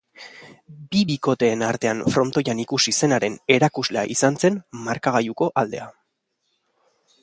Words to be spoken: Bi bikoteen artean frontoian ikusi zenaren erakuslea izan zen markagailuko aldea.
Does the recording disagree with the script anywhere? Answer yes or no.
no